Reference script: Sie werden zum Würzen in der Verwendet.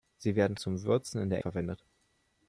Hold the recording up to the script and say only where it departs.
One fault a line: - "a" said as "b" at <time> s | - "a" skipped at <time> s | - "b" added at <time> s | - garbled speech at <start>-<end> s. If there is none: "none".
none